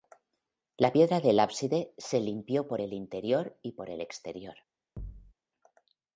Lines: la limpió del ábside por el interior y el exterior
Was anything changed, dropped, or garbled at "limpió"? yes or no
yes